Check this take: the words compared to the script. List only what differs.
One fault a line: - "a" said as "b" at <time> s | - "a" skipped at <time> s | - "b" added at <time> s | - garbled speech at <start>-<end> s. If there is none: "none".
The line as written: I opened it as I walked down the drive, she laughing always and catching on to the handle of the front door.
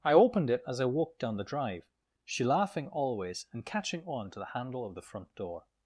none